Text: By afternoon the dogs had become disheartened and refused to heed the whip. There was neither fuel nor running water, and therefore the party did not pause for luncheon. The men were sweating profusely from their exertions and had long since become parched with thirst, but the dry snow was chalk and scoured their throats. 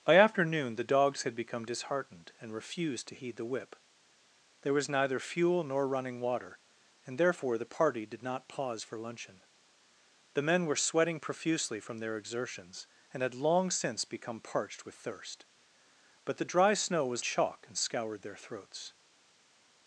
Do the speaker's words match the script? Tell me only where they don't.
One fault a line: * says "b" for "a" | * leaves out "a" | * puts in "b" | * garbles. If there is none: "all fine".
all fine